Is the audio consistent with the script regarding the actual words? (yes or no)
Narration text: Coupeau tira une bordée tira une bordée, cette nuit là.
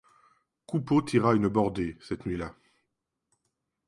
no